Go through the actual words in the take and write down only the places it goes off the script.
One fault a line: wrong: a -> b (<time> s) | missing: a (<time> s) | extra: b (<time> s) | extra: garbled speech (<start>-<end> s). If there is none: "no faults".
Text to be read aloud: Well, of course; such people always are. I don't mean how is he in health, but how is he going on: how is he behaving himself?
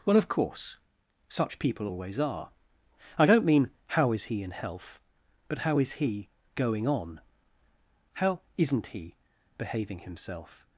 wrong: is -> isn't (8.6 s)